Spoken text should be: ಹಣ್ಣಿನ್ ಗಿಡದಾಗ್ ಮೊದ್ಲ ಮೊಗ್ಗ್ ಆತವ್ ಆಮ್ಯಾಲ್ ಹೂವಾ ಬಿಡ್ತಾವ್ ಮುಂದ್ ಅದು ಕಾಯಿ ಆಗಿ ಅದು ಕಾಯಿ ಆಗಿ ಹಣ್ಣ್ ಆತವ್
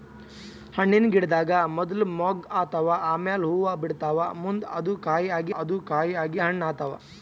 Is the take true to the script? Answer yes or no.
yes